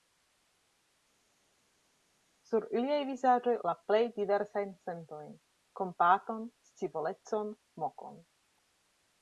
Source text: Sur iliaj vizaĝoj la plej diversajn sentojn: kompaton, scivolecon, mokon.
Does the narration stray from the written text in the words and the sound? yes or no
no